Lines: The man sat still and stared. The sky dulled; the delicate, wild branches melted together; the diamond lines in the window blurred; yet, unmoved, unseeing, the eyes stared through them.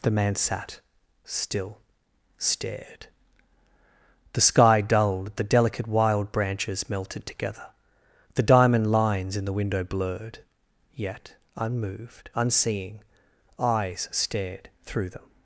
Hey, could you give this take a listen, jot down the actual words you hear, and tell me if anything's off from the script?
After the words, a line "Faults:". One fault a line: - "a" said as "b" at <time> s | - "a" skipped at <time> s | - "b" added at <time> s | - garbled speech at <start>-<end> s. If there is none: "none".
The man sat still stared. The sky dulled; the delicate, wild branches melted together; the diamond lines in the window blurred; yet, unmoved, unseeing, eyes stared through them.
Faults:
- "and" skipped at 1.8 s
- "the" skipped at 13.0 s